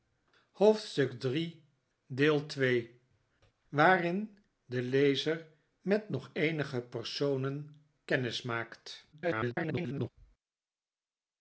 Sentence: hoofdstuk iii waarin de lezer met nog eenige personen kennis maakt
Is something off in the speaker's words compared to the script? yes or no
yes